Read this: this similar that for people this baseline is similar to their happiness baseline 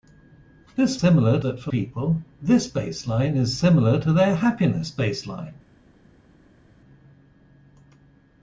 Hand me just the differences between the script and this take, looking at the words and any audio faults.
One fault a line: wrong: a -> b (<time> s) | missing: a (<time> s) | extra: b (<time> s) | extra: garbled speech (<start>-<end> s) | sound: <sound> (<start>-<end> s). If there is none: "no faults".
no faults